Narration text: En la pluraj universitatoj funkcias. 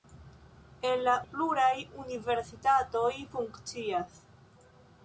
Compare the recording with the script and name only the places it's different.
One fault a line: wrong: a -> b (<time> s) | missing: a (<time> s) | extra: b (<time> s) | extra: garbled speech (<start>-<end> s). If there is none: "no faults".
no faults